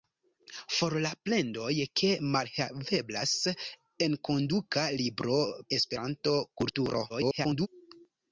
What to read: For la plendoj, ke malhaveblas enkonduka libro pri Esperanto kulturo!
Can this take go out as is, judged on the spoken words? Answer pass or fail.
fail